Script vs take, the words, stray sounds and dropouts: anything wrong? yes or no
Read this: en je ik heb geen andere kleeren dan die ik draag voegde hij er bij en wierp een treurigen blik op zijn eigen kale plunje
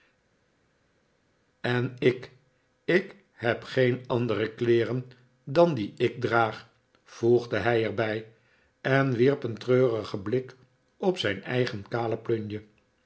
yes